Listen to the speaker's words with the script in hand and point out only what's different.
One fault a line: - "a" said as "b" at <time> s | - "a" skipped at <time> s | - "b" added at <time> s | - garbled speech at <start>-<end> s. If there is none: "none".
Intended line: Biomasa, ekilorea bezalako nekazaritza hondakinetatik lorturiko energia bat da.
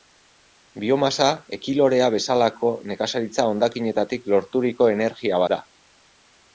- "bat" skipped at 5.4 s